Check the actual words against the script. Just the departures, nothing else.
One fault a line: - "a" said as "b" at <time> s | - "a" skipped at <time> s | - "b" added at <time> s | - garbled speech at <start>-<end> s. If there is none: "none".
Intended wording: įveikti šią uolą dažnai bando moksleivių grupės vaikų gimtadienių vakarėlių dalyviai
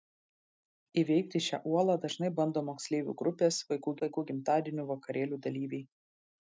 - "vaikų" added at 4.1 s